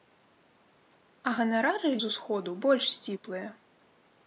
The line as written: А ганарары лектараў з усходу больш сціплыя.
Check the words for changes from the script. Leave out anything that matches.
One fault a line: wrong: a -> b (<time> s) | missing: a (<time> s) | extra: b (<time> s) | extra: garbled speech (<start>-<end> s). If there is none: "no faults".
missing: лектараў (1.9 s)